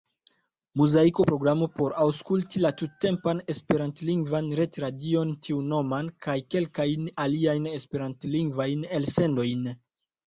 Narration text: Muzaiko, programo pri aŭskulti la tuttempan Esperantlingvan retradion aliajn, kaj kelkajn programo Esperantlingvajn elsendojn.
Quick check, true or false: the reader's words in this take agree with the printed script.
false